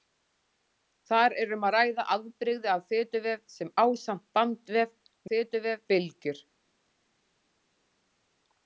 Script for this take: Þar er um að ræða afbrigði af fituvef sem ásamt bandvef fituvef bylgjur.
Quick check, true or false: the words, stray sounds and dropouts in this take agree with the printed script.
true